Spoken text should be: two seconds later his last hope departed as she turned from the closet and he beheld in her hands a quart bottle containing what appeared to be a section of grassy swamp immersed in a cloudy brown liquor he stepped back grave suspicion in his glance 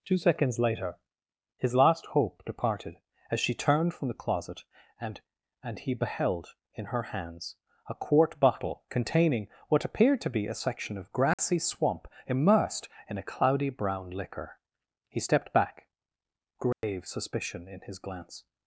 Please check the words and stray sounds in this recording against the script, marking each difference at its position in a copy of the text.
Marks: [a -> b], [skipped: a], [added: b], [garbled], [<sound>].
two seconds later his last hope departed as she turned from the closet and [added: and] he beheld in her hands a quart bottle containing what appeared to be a section of grassy [dropout] swamp immersed in a cloudy brown liquor he stepped back grave [dropout] suspicion in his glance